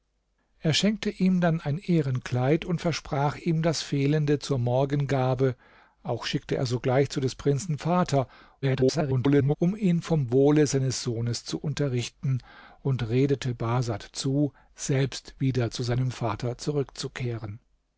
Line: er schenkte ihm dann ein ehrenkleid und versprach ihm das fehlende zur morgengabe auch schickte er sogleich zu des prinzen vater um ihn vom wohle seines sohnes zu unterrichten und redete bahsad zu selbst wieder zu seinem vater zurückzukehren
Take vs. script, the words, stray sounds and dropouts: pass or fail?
fail